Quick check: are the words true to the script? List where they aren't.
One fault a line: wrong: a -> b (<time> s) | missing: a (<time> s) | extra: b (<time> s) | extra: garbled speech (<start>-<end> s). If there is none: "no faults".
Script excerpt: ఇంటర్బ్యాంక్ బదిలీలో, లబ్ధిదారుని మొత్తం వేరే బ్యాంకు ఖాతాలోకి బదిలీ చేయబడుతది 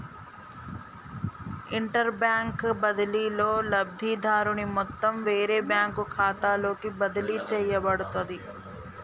no faults